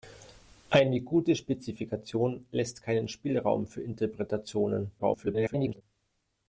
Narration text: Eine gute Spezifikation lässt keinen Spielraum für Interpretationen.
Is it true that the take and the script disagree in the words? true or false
true